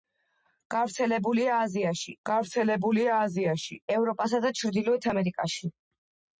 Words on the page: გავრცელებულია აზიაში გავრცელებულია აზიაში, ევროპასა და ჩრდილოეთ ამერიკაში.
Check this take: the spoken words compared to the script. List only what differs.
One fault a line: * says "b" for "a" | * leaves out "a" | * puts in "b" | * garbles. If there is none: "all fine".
all fine